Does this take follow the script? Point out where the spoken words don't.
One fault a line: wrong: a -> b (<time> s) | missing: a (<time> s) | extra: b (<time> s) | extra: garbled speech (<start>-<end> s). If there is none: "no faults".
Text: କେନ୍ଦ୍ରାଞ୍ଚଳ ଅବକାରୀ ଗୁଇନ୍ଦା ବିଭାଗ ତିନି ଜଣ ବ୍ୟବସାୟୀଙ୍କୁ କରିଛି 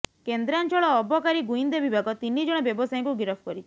extra: ଗିରଫ (3.2 s)